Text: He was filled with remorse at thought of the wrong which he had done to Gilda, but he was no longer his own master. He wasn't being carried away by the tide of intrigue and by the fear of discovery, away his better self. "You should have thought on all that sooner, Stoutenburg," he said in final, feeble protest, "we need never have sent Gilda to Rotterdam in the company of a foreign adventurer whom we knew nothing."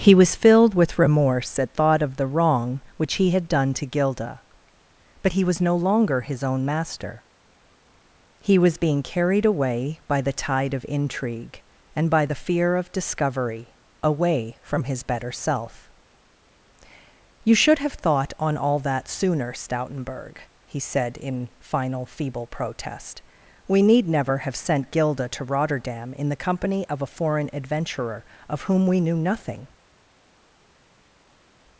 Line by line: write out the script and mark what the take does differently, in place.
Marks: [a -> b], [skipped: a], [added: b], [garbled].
He was filled with remorse at thought of the wrong which he had done to Gilda, but he was no longer his own master. He [wasn't -> was] being carried away by the tide of intrigue and by the fear of discovery, away [added: from] his better self. "You should have thought on all that sooner, Stoutenburg," he said in final, feeble protest, "we need never have sent Gilda to Rotterdam in the company of a foreign adventurer [added: of] whom we knew nothing."